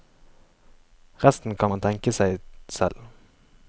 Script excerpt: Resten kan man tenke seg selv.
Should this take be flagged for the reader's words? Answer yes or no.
no